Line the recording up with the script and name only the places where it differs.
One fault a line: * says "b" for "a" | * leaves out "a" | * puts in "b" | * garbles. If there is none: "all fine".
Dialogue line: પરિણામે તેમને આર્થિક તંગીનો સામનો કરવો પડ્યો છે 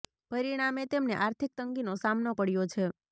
* leaves out "કરવો"